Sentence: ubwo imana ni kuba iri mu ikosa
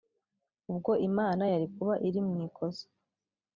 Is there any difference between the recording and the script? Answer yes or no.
yes